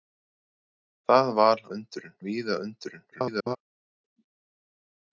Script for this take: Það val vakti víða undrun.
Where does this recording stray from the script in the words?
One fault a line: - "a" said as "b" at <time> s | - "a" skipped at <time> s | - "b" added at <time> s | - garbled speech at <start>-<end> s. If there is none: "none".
- "vakti" said as "undrun" at 1.8 s
- garbled speech at 3.1-3.6 s